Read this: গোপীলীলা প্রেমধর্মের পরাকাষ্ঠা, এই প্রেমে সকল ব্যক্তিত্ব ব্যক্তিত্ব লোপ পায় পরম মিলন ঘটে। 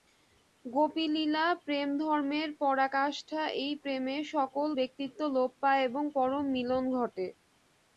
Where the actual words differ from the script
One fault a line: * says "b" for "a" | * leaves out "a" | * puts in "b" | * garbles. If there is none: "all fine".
* leaves out "ব্যক্তিত্ব"
* puts in "এবং"